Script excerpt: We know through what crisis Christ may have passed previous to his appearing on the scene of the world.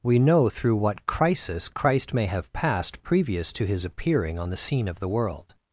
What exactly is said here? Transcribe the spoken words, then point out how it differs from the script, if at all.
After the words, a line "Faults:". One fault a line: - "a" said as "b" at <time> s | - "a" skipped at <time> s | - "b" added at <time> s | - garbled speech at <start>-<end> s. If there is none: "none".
We know through what crisis Christ may have passed previous to his appearing on the scene of the world.
Faults:
none